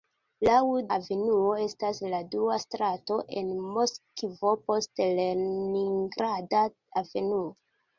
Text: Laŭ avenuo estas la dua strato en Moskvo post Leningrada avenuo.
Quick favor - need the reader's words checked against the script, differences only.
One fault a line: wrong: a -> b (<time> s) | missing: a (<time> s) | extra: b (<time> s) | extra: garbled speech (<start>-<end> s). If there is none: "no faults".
no faults